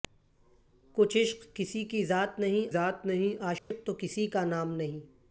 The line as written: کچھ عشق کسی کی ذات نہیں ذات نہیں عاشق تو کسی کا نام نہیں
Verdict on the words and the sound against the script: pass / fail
fail